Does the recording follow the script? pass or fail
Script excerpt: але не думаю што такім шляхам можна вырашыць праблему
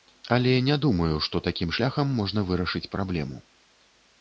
pass